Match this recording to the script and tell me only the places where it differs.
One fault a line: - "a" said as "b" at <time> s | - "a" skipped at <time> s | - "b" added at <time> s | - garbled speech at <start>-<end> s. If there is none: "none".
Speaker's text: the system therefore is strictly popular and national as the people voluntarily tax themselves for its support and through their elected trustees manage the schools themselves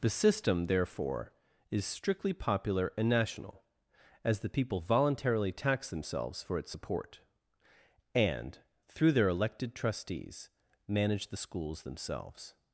none